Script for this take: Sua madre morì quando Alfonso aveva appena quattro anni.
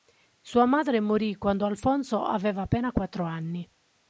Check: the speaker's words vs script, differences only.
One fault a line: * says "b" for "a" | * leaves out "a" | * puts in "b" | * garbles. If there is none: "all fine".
all fine